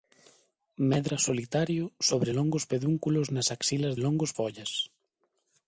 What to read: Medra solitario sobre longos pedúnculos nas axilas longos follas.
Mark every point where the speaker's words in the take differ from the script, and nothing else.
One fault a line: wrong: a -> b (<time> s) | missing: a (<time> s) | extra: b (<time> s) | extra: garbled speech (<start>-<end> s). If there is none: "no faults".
no faults